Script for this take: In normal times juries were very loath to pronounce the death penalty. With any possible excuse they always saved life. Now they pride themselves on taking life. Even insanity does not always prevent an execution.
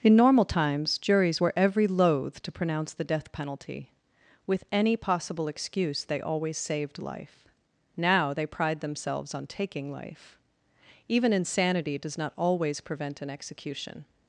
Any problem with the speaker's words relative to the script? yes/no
yes